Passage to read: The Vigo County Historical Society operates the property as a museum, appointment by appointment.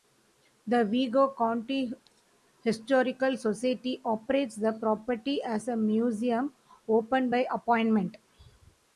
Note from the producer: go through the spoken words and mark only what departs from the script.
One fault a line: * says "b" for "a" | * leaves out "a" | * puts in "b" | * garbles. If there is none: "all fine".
* says "open" for "appointment"